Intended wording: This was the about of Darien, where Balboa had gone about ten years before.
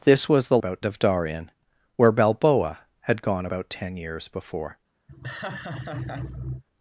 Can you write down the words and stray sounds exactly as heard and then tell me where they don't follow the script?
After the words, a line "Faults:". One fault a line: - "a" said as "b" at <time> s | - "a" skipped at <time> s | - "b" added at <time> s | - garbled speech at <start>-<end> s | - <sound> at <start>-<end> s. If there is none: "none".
This was the about of Darien, where Balboa had gone about ten years before.
Faults:
- laugh at 5.1-6.6 s